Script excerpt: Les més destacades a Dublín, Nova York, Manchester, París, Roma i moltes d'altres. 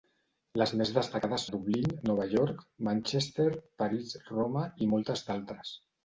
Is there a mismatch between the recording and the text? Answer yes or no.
no